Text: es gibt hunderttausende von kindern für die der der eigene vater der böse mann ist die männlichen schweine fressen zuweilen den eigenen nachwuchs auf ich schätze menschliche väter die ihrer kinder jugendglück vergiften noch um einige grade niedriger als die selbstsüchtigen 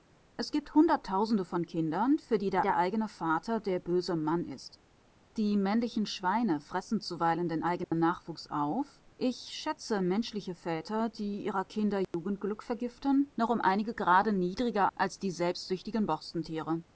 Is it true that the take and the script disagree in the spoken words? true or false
false